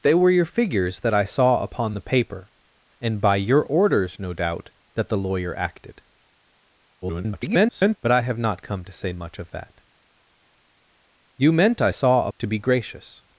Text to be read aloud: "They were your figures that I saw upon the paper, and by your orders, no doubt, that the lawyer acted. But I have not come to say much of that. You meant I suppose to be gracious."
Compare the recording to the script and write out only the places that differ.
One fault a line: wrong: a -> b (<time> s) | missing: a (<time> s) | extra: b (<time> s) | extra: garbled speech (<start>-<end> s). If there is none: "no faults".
extra: garbled speech (7.0-8.0 s)
wrong: suppose -> saw (11.9 s)